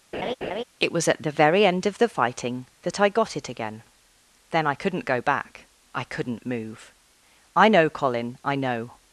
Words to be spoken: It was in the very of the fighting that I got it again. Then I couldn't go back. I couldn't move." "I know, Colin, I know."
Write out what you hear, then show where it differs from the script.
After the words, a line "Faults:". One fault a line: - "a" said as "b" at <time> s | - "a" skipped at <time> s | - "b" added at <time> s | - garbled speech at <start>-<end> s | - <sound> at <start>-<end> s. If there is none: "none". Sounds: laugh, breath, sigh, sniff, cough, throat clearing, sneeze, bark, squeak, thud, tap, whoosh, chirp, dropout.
It was at the very end of the fighting that I got it again. Then I couldn't go back. I couldn't move." "I know, Colin, I know."
Faults:
- laugh at 0.1-0.6 s
- "in" said as "at" at 1.1 s
- "end" added at 1.6 s